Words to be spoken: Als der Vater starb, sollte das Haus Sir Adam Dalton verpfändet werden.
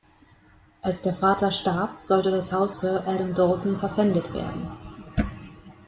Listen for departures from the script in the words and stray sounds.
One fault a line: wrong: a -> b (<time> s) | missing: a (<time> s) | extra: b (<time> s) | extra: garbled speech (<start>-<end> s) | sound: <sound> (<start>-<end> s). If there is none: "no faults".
no faults